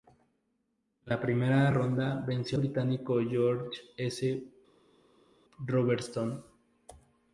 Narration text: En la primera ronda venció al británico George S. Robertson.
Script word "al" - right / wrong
wrong